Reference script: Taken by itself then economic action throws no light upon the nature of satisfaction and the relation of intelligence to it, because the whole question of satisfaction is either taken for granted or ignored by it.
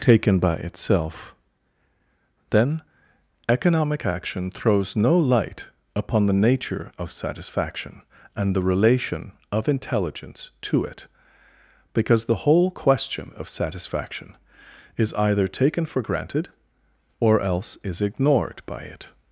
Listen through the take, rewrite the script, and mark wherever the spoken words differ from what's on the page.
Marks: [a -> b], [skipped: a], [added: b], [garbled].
Taken by itself then economic action throws no light upon the nature of satisfaction and the relation of intelligence to it, because the whole question of satisfaction is either taken for granted or [added: else is] ignored by it.